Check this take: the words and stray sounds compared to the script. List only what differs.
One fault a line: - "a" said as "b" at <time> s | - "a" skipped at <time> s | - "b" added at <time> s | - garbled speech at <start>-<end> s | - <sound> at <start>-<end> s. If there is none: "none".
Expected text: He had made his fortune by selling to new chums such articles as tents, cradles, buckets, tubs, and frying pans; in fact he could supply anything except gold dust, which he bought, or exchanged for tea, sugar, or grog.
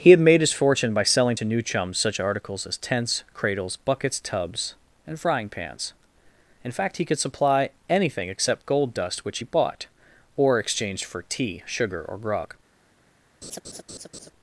- laugh at 13.4-14.3 s